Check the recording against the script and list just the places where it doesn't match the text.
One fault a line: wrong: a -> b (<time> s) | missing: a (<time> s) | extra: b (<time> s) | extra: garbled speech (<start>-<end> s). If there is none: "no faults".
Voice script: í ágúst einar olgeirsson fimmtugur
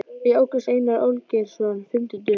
no faults